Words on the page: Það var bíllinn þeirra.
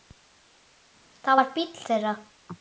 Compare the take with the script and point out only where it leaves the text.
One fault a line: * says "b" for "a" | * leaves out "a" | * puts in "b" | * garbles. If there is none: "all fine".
all fine